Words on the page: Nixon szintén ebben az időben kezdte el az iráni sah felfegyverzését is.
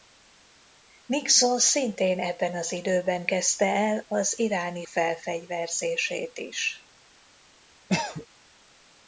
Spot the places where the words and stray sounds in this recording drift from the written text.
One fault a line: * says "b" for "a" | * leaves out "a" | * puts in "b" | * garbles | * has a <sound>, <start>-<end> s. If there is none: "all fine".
* leaves out "sah"
* has a cough, 7.9-8.3 s